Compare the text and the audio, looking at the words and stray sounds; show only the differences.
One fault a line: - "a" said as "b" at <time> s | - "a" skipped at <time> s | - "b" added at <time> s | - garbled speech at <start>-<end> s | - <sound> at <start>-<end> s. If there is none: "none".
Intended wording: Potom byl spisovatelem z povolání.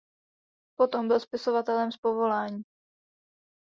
none